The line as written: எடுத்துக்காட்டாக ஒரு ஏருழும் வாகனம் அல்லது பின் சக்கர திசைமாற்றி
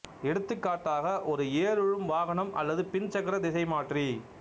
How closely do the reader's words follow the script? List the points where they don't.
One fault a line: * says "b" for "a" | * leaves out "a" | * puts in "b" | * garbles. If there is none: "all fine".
all fine